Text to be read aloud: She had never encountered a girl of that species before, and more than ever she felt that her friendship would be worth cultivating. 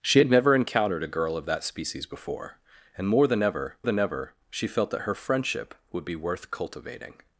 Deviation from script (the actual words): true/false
true